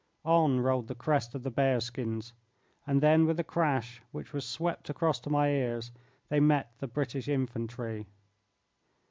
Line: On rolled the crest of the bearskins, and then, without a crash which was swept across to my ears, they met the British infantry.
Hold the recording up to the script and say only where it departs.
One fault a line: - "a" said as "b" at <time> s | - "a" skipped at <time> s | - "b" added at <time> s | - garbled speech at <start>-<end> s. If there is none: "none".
- "without" said as "with" at 3.3 s